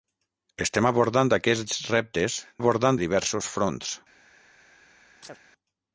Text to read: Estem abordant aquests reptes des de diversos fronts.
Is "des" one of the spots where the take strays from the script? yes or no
yes